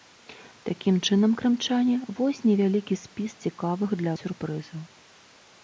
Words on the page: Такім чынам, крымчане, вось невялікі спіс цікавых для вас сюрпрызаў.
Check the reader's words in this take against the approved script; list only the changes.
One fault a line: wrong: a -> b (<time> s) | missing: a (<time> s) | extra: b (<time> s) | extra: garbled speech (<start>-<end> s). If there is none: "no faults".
missing: вас (4.1 s)